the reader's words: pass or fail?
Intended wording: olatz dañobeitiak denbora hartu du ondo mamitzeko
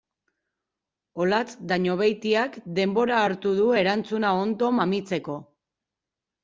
fail